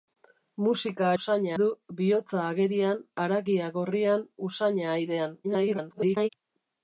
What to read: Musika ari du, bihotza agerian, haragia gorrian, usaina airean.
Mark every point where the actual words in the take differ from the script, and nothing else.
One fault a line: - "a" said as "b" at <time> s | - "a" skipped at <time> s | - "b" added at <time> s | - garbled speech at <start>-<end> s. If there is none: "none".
- "ari" said as "usaina" at 1.2 s
- garbled speech at 5.4-6.3 s